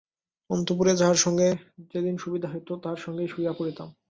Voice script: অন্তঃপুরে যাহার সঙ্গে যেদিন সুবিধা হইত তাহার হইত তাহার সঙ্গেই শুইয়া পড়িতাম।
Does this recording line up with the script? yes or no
no